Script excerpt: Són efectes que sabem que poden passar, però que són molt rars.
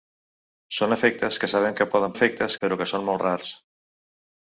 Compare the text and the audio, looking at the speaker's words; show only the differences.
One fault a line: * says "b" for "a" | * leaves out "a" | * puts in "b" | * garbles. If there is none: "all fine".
* says "efectes" for "passar"